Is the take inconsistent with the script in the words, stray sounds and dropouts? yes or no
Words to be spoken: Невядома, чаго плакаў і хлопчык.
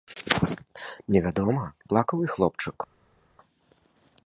yes